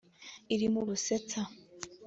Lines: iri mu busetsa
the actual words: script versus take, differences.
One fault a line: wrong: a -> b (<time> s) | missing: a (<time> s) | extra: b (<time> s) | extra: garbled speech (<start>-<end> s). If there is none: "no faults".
no faults